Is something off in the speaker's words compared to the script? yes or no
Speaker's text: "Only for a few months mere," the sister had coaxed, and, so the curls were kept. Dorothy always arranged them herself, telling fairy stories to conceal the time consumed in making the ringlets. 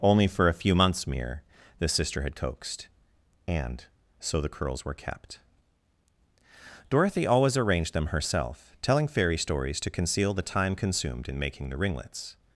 no